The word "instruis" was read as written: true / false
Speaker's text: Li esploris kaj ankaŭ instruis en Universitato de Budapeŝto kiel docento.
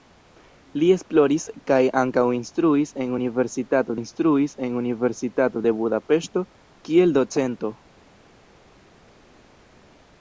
true